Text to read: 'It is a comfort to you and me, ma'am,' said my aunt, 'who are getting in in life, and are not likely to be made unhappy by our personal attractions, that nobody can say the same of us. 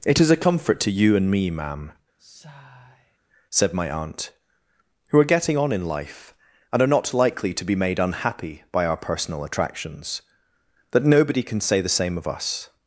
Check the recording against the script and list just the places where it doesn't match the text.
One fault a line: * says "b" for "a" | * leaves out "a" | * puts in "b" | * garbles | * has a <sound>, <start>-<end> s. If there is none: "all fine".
* has a sigh, 2.2-3.2 s
* says "on" for "in"